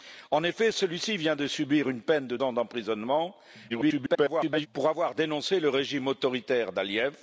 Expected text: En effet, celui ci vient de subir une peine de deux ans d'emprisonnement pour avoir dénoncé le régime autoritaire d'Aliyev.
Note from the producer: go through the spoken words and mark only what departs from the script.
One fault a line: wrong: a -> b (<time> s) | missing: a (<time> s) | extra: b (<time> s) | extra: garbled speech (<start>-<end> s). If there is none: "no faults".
missing: deux (2.4 s)
extra: garbled speech (3.7-4.7 s)